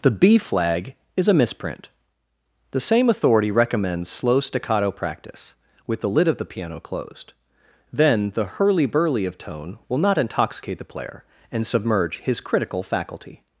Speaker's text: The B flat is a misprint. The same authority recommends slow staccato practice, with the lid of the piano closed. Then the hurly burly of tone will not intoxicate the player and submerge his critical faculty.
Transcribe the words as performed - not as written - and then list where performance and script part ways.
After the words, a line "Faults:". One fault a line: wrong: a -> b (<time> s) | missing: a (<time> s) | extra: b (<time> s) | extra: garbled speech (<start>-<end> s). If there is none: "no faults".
The B flag is a misprint. The same authority recommends slow staccato practice, with the lid of the piano closed. Then the hurly burly of tone will not intoxicate the player and submerge his critical faculty.
Faults:
wrong: flat -> flag (0.4 s)